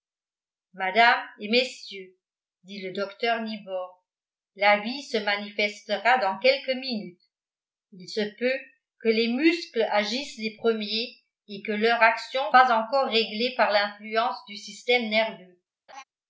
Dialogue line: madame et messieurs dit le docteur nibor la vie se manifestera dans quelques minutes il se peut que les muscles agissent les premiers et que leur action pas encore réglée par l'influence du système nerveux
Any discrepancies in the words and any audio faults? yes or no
yes